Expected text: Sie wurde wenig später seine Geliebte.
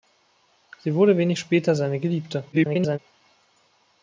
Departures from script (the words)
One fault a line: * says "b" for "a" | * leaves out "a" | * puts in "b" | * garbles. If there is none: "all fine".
* garbles